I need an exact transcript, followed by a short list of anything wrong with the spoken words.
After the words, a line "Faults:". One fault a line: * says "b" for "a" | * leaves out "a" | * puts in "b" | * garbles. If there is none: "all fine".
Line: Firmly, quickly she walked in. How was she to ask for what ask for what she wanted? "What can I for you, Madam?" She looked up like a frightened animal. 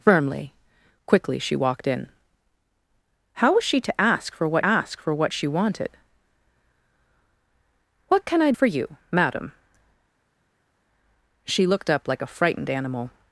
Firmly, quickly she walked in. How was she to ask for what ask for what she wanted? "What can I for you, Madam?" She looked up like a frightened animal.
Faults:
all fine